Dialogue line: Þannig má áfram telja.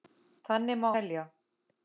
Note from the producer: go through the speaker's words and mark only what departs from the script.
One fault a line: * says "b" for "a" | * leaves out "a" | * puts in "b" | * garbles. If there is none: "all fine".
* leaves out "áfram"